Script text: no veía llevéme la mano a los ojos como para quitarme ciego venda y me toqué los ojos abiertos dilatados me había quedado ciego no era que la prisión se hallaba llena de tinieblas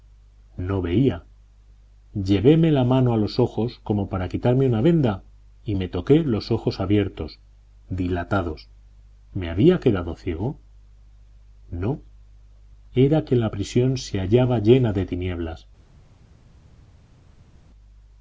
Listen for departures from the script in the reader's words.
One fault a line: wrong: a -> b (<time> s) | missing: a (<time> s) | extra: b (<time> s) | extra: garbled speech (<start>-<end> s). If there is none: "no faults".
wrong: ciego -> una (4.7 s)